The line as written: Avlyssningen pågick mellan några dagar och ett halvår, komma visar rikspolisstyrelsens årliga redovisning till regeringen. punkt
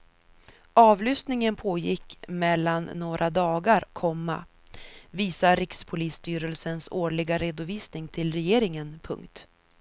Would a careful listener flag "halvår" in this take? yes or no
yes